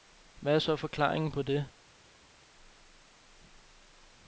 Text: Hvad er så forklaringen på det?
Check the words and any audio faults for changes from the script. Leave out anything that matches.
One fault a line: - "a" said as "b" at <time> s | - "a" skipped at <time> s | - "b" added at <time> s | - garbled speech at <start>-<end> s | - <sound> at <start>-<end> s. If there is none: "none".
none